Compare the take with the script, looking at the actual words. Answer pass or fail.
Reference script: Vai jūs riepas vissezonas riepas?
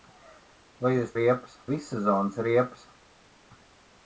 pass